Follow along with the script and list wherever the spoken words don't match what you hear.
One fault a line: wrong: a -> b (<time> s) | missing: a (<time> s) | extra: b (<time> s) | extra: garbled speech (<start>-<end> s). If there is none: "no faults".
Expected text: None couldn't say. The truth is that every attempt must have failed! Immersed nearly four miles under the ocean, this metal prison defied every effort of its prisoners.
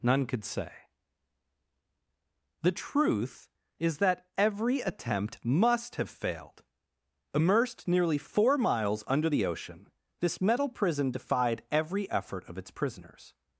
wrong: couldn't -> could (0.2 s)